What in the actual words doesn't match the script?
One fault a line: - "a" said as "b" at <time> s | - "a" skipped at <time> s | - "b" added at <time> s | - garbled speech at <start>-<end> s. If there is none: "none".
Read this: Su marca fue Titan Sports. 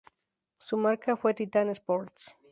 none